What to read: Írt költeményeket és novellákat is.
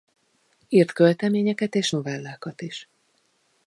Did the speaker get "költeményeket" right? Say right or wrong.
right